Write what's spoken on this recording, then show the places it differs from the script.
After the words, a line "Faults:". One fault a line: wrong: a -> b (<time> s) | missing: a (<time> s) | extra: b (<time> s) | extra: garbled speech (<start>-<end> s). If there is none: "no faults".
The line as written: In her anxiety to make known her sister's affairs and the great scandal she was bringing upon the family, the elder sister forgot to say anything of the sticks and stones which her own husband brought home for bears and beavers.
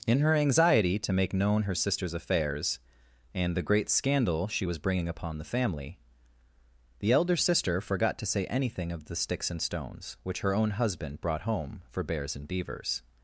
In her anxiety to make known her sister's affairs and the great scandal she was bringing upon the family, the elder sister forgot to say anything of the sticks and stones which her own husband brought home for bears and beavers.
Faults:
no faults